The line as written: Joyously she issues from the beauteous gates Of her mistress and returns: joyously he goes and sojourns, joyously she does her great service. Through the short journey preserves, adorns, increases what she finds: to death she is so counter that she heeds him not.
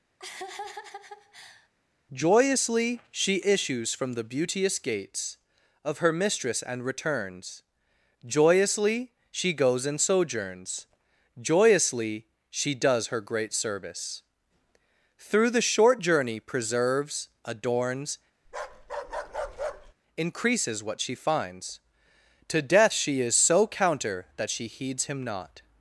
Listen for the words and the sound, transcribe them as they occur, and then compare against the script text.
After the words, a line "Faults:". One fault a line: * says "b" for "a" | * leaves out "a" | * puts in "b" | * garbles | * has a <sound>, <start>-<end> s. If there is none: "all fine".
Joyously she issues from the beauteous gates Of her mistress and returns: joyously she goes and sojourns, joyously she does her great service. Through the short journey preserves, adorns, increases what she finds: to death she is so counter that she heeds him not.
Faults:
* has a laugh, 0.2-1.7 s
* says "she" for "he"
* has a bark, 18.4-19.9 s